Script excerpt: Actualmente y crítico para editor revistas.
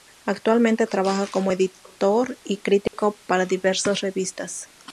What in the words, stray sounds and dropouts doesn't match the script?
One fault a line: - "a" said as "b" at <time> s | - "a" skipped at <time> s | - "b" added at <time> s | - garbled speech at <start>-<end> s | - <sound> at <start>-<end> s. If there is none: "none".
- "trabaja como editor" added at 0.9 s
- dropout at 2.9-2.9 s
- "editor" said as "diversas" at 3.5 s